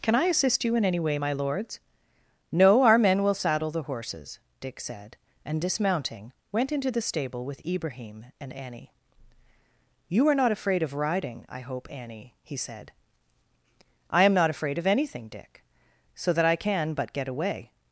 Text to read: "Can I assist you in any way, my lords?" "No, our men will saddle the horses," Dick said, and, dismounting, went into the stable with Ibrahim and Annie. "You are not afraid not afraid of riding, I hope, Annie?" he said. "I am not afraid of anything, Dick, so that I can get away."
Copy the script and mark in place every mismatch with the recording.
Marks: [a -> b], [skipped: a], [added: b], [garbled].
"Can I assist you in any way, my lords?" "No, our men will saddle the horses," Dick said, and, dismounting, went into the stable with Ibrahim and Annie. "You are not afraid [skipped: not afraid] of riding, I hope, Annie?" he said. "I am not afraid of anything, Dick, so that I can [added: but] get away."